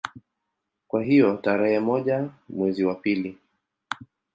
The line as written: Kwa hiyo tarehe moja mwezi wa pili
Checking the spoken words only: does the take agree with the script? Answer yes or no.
yes